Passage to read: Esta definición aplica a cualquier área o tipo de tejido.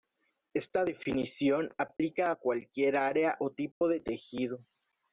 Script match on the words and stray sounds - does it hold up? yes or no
no